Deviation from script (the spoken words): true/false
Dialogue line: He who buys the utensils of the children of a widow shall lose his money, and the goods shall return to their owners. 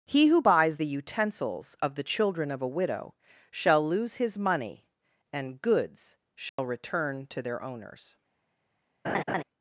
true